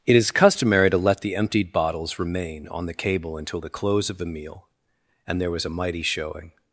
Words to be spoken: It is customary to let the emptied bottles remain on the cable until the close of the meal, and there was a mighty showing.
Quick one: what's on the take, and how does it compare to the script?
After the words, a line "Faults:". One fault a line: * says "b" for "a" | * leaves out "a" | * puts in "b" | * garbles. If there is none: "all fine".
It is customary to let the emptied bottles remain on the cable until the close of the meal, and there was a mighty showing.
Faults:
all fine